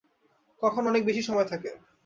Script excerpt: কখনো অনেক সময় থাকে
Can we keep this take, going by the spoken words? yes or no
no